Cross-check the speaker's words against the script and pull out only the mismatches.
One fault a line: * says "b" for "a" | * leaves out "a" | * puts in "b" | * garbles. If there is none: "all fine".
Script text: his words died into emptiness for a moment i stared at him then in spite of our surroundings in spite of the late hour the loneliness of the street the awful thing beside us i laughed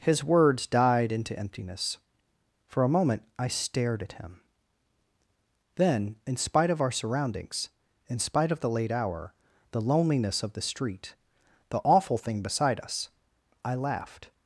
all fine